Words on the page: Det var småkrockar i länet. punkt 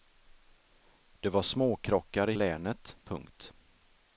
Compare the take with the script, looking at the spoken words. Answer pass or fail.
pass